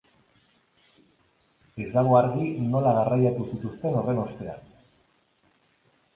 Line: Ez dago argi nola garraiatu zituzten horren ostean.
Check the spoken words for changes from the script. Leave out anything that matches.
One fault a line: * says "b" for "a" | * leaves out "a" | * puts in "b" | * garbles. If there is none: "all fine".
all fine